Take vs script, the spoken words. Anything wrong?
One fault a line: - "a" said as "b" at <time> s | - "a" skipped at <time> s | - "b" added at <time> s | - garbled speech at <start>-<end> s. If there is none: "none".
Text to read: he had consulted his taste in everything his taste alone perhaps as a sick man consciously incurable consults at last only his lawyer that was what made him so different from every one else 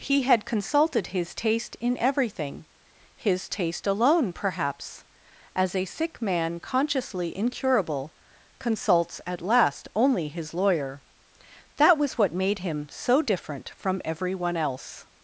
none